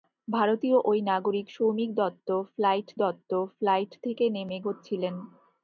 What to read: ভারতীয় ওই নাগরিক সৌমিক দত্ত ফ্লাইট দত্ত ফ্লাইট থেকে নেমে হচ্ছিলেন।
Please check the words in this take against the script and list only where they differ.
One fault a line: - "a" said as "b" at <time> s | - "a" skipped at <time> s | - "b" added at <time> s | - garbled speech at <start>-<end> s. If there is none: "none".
none